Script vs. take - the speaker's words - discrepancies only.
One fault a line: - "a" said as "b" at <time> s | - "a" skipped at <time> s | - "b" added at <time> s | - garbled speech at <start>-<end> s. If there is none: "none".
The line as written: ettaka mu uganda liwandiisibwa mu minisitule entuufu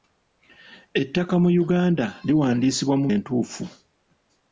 - "minisitule" skipped at 3.1 s